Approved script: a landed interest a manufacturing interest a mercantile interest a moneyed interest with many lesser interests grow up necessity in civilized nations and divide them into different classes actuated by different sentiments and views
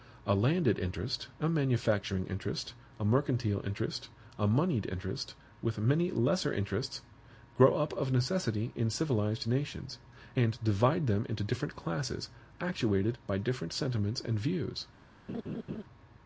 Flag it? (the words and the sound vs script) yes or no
yes